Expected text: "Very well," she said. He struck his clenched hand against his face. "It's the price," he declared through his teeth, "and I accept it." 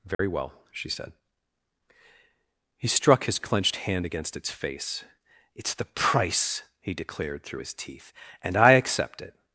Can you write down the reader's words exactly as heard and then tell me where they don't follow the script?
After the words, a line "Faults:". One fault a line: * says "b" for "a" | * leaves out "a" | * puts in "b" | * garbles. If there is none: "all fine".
"Very well," she said. He struck his clenched hand against its face. "It's the price," he declared through his teeth, "and I accept it."
Faults:
* says "its" for "his"